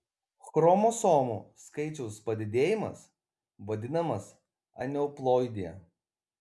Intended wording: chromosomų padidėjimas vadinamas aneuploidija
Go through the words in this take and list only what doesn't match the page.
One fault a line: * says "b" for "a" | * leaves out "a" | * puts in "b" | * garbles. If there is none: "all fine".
* puts in "skaičiaus"